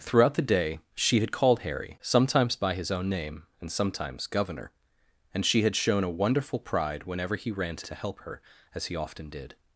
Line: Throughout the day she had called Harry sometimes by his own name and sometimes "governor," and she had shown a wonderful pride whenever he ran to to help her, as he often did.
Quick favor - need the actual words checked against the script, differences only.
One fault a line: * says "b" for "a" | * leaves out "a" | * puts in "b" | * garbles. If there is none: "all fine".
all fine